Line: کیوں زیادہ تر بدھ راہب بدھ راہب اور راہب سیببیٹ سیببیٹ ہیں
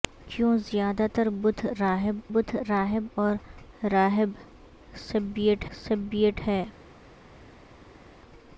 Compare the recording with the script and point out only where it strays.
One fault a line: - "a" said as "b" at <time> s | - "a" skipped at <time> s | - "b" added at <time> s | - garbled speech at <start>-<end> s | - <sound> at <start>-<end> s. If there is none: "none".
none